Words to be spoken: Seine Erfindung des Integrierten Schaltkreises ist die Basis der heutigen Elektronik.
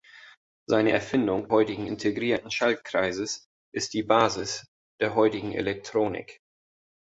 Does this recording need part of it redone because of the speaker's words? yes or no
yes